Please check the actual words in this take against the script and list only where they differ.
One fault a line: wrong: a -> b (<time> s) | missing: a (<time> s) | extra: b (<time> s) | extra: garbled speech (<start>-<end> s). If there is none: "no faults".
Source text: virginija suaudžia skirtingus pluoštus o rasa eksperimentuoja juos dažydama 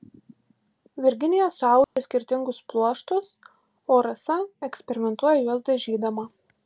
no faults